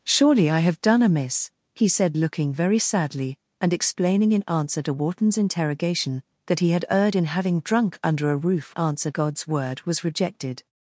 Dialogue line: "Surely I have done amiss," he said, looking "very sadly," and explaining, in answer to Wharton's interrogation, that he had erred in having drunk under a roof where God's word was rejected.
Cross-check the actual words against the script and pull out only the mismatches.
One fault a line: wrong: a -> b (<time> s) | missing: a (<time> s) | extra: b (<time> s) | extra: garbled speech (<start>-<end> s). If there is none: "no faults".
wrong: where -> answer (8.8 s)